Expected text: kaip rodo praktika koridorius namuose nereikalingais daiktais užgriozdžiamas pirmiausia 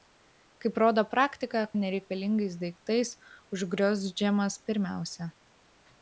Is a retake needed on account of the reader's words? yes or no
yes